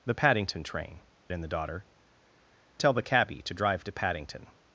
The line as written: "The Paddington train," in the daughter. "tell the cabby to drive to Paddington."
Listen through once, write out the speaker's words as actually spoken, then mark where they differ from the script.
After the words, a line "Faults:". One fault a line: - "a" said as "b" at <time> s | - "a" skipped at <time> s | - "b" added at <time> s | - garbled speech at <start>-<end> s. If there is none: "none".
"The Paddington train," in the daughter. "tell the cabby to drive to Paddington."
Faults:
none